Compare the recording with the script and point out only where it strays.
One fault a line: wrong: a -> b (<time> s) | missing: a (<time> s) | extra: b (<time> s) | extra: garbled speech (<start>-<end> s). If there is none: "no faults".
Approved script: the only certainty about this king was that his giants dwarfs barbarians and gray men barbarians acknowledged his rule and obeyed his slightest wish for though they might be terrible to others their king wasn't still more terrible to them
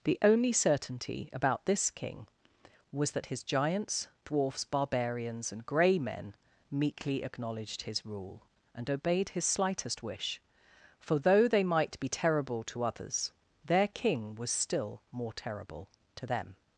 wrong: barbarians -> meekly (6.7 s)
wrong: wasn't -> was (14.3 s)